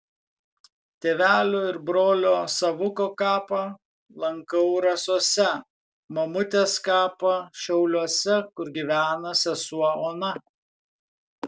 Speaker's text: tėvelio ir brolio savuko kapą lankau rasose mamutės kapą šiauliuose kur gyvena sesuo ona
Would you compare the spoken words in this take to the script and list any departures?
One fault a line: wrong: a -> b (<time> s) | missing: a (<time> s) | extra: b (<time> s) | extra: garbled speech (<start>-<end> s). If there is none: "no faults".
no faults